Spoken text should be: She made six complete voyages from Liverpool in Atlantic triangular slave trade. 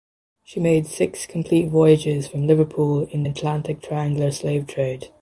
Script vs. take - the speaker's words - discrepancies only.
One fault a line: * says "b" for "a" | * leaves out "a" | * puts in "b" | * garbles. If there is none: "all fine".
all fine